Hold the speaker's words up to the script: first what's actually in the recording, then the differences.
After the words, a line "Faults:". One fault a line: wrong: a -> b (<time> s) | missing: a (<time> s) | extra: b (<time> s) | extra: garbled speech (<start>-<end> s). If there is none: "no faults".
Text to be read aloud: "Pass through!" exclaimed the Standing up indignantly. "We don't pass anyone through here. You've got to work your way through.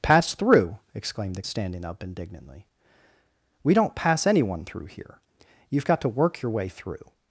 "Pass through!" exclaimed the Standing up indignantly. "We don't pass anyone through here. You've got to work your way through.
Faults:
no faults